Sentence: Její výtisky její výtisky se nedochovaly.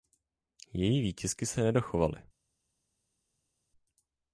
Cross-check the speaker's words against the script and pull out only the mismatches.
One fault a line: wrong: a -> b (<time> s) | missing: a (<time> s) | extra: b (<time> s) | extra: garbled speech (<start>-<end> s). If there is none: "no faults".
missing: její výtisky (1.4 s)